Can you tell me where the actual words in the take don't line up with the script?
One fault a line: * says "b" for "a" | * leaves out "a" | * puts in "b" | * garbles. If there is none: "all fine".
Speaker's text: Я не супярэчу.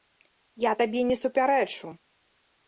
* puts in "табе"